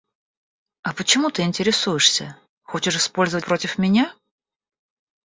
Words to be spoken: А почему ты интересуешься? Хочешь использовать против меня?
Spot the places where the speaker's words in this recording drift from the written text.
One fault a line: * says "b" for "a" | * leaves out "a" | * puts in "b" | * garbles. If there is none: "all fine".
all fine